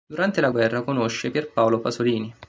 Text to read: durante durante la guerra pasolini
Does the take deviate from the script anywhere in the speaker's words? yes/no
yes